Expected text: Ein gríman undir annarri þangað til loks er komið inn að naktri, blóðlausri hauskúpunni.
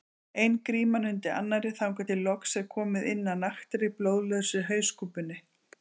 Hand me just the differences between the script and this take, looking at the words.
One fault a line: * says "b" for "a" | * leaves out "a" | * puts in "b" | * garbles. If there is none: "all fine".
all fine